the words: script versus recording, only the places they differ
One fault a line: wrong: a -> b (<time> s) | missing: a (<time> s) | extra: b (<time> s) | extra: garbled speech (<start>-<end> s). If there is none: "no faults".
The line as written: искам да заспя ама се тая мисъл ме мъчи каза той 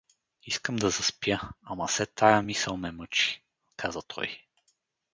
no faults